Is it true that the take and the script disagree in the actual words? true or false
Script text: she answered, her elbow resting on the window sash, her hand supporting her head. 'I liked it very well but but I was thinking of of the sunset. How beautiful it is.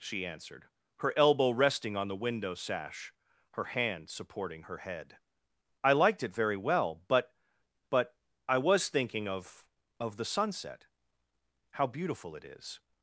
false